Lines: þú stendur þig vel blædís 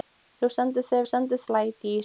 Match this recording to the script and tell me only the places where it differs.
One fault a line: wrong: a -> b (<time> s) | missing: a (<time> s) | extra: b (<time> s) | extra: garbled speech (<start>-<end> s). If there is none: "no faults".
wrong: vel -> stendur (1.1 s)